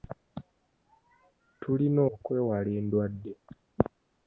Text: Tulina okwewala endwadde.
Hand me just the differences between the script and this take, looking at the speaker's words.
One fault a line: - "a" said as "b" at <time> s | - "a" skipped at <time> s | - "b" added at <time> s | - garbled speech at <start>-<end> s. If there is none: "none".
none